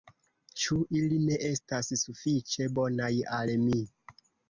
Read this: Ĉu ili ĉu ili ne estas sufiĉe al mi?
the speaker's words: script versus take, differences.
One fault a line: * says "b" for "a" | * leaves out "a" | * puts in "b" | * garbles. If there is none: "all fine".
* leaves out "ĉu ili"
* puts in "bonaj"